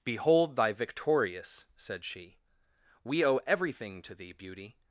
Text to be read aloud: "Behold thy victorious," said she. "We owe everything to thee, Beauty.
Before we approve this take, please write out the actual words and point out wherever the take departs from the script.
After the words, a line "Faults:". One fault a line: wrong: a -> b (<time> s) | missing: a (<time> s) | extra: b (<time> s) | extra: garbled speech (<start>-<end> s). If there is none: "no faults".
"Behold thy victorious," said she. "We owe everything to thee, Beauty.
Faults:
no faults